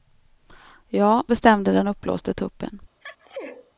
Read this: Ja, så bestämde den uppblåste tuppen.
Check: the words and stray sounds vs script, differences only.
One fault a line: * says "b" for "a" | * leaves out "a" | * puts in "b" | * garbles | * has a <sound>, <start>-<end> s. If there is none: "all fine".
* leaves out "så"
* has a sneeze, 3.0-3.7 s